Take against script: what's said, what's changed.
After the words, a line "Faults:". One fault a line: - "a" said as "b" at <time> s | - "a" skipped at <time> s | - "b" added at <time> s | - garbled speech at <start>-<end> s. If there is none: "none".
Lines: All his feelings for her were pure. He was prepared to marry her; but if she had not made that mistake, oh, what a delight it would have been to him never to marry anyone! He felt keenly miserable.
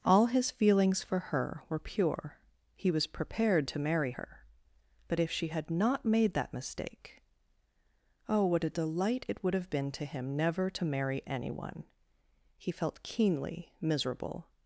All his feelings for her were pure. He was prepared to marry her; but if she had not made that mistake, oh, what a delight it would have been to him never to marry anyone! He felt keenly miserable.
Faults:
none